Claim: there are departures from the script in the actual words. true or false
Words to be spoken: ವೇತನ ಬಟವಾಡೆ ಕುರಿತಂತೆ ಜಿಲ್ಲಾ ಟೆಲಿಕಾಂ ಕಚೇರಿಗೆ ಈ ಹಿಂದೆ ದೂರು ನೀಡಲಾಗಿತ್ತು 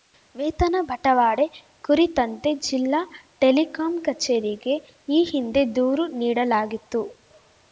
false